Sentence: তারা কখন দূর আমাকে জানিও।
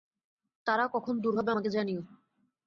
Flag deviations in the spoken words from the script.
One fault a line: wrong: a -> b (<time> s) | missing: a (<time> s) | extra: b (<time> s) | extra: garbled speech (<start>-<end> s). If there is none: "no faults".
extra: হবে (1.4 s)